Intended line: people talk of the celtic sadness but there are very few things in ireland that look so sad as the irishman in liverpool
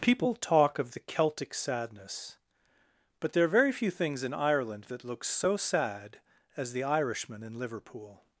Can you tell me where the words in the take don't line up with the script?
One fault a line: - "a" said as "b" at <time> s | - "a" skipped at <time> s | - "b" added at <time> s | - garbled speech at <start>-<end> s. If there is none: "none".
none